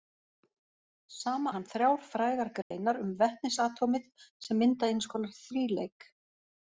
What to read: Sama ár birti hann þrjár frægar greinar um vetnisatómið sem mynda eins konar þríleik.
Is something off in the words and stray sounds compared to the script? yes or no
yes